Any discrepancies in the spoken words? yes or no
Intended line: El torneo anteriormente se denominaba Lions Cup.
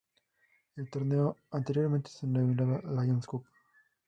no